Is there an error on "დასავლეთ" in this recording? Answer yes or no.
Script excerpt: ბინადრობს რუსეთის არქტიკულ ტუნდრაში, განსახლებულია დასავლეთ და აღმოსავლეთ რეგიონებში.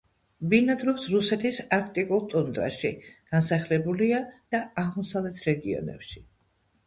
yes